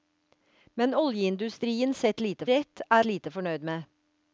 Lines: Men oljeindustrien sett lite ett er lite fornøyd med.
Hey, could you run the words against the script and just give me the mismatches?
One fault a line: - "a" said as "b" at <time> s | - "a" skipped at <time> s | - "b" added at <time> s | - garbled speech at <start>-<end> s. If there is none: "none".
none